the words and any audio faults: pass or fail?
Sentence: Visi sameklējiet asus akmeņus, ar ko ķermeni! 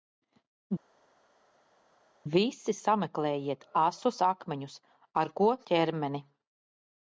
pass